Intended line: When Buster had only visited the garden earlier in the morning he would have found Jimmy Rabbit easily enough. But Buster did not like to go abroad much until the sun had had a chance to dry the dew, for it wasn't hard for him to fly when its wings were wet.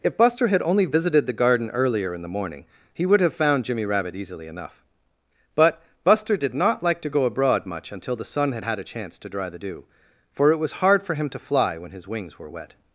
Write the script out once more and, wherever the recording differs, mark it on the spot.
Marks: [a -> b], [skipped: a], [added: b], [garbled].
[When -> If] Buster had only visited the garden earlier in the morning he would have found Jimmy Rabbit easily enough. But Buster did not like to go abroad much until the sun had had a chance to dry the dew, for it [wasn't -> was] hard for him to fly when [its -> his] wings were wet.